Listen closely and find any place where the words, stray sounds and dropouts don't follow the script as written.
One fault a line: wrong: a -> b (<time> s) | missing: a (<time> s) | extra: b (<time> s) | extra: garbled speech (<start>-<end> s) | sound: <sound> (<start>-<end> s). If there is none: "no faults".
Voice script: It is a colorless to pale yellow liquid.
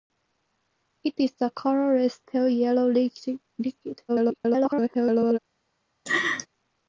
missing: to (2.2 s)
extra: garbled speech (4.1-5.4 s)
sound: laugh (6.1-6.5 s)